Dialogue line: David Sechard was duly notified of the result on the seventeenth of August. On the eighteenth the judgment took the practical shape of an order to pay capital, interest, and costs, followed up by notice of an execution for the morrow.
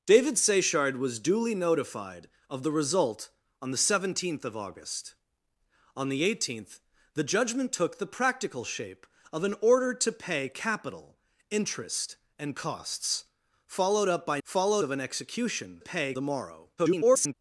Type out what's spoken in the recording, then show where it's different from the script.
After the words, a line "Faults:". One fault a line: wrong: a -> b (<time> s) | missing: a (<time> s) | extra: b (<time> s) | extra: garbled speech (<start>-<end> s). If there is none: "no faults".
David Sechard was duly notified of the result on the seventeenth of August. On the eighteenth the judgment took the practical shape of an order to pay capital, interest, and costs, followed up by followed of an execution pay the morrow. [garbled]
Faults:
wrong: notice -> followed (14.4 s)
wrong: for -> pay (15.8 s)
extra: garbled speech (16.8-17.3 s)